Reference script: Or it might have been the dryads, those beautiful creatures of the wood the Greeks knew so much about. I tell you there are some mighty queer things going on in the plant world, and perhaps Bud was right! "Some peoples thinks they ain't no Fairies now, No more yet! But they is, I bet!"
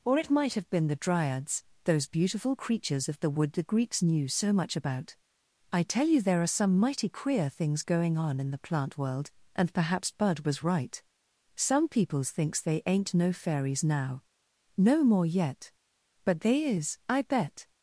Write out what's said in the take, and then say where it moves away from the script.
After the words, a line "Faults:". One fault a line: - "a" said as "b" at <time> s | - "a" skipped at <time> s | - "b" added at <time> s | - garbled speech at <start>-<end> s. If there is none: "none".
Or it might have been the dryads, those beautiful creatures of the wood the Greeks knew so much about. I tell you there are some mighty queer things going on in the plant world, and perhaps Bud was right! "Some peoples thinks they ain't no Fairies now, No more yet! But they is, I bet!"
Faults:
none